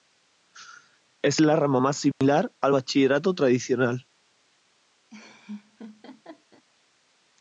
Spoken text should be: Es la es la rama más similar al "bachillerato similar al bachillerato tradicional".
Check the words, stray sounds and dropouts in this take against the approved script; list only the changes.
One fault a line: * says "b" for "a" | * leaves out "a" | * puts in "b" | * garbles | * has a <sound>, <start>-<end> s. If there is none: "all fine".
* leaves out "es la"
* has a dropout, 2.1-2.2 s
* leaves out "similar al bachillerato"
* has a laugh, 5.1-6.6 s